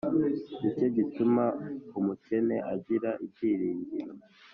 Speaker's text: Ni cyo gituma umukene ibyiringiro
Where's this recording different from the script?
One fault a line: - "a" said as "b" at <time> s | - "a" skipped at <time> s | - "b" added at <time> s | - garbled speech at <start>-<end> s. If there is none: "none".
- "agira" added at 2.7 s